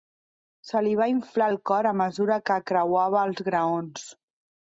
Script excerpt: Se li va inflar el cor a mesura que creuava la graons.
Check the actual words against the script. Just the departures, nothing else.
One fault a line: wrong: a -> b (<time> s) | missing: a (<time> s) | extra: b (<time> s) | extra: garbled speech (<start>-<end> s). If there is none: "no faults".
wrong: la -> els (3.3 s)